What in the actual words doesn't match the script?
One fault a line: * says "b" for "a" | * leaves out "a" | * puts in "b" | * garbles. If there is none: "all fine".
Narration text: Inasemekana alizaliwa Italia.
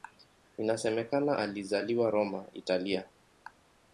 * puts in "Roma"